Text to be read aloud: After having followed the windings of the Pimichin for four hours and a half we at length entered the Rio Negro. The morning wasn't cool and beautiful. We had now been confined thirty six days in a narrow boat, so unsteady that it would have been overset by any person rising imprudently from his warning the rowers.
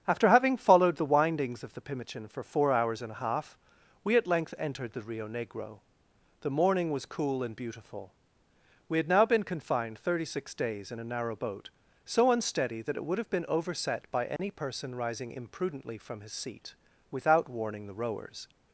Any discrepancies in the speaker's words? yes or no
yes